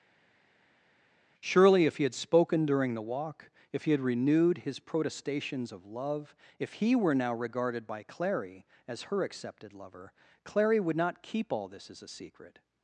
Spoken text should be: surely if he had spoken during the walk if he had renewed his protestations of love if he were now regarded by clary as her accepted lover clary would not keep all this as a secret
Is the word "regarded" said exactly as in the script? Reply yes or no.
yes